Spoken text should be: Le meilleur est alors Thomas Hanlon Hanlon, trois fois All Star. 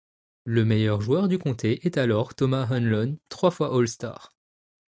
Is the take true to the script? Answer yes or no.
no